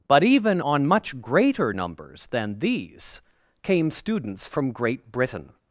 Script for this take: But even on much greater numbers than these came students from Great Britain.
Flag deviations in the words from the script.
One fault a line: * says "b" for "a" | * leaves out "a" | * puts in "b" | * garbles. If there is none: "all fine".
all fine